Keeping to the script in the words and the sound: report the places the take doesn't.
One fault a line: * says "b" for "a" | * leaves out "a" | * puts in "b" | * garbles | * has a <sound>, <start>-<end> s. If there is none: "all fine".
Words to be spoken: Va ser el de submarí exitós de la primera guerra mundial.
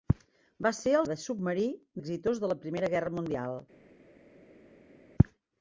all fine